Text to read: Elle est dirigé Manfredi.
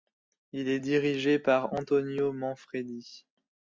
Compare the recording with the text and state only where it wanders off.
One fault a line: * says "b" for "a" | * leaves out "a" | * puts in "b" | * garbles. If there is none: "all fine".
* says "Il" for "Elle"
* puts in "par Antonio"